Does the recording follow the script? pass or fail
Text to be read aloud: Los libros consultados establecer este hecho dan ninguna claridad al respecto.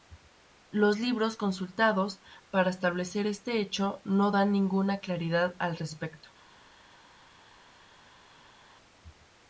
fail